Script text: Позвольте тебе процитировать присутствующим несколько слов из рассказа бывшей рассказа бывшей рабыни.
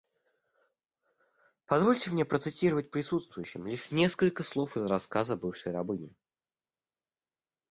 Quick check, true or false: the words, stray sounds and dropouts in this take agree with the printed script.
false